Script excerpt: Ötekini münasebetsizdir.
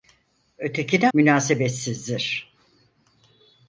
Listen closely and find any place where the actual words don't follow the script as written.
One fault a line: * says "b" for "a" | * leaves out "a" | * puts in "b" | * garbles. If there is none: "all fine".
all fine